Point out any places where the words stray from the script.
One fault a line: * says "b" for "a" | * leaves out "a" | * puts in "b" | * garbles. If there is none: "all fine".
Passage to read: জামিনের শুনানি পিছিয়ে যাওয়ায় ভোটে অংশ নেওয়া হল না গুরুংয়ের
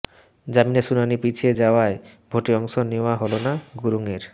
all fine